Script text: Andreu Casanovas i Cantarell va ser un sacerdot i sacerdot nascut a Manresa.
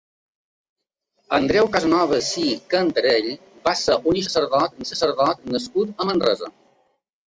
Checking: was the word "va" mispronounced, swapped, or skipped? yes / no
no